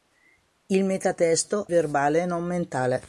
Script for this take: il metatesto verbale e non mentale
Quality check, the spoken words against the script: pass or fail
pass